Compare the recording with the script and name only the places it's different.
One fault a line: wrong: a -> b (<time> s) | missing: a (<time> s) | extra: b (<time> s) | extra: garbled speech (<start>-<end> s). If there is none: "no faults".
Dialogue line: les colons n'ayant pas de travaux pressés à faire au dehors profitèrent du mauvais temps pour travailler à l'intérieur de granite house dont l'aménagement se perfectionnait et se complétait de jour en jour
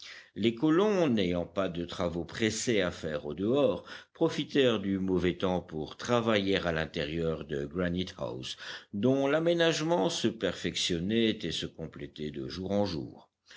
no faults